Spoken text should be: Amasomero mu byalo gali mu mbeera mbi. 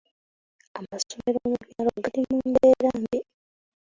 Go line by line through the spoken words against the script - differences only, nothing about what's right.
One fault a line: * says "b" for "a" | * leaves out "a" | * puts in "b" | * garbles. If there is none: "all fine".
all fine